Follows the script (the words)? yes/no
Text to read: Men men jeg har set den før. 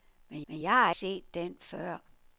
yes